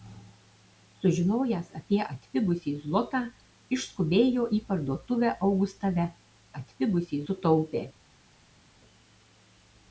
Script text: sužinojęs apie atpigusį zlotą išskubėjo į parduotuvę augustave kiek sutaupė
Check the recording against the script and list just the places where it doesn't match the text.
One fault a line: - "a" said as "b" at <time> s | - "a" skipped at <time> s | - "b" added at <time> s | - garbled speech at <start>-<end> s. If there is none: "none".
- "kiek" said as "atpigusį" at 6.6 s